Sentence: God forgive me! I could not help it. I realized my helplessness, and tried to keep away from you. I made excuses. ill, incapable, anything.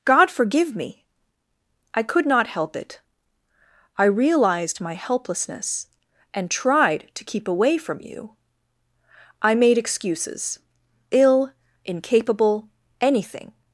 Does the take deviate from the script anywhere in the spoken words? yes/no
no